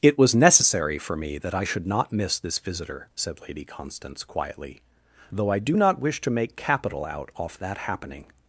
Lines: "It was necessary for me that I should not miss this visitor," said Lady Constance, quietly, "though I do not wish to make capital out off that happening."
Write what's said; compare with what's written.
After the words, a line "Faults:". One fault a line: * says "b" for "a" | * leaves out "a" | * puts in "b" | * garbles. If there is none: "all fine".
"It was necessary for me that I should not miss this visitor," said Lady Constance, quietly, "though I do not wish to make capital out off that happening."
Faults:
all fine